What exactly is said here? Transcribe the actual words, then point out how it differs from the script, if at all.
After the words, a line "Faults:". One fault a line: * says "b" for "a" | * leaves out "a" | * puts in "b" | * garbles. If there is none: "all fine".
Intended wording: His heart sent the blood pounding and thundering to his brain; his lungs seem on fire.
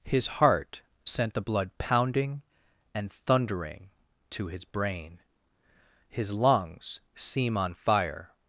His heart sent the blood pounding and thundering to his brain; his lungs seem on fire.
Faults:
all fine